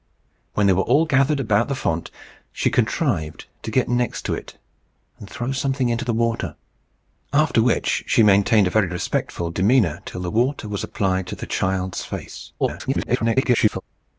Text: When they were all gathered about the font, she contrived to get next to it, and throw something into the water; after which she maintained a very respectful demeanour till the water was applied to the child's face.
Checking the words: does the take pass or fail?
fail